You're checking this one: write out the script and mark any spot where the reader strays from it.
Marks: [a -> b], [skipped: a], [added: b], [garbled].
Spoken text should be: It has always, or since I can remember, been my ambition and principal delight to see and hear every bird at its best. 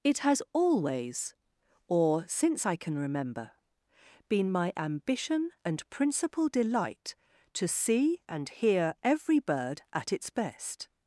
It has always, or since I can remember, been my ambition and principal delight to see and hear every bird at its best.